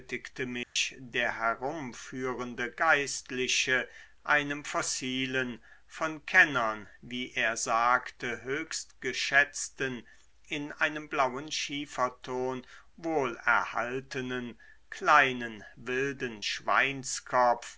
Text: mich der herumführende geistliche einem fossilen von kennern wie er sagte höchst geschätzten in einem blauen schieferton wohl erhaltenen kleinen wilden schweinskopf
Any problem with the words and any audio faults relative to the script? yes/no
yes